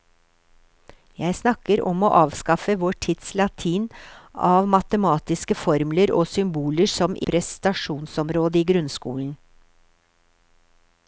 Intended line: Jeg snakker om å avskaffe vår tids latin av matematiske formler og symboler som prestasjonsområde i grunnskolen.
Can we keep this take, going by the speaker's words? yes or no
yes